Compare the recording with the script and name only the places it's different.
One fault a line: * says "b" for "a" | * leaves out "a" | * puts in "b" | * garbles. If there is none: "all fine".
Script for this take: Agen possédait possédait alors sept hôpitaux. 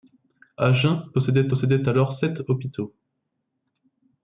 all fine